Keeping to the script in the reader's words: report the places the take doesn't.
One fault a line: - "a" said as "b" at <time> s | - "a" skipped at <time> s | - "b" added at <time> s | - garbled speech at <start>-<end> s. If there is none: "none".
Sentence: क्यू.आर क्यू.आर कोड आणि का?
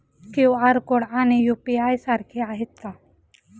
- "क्यू.आर" skipped at 0.8 s
- "यू.पी.आय सारखे आहेत" added at 1.4 s